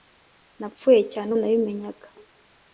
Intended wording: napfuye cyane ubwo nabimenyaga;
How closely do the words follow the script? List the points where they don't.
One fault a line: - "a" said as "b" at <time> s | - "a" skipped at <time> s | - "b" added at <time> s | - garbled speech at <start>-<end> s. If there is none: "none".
- "ubwo" skipped at 1.3 s